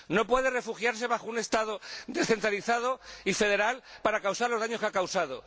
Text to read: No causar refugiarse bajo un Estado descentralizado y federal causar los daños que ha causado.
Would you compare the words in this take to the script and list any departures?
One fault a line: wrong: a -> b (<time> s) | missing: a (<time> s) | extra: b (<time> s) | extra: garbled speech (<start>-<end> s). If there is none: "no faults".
wrong: causar -> puede (0.3 s)
extra: para (4.0 s)